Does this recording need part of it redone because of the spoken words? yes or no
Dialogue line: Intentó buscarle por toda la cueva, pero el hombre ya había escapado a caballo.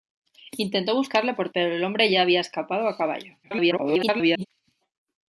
yes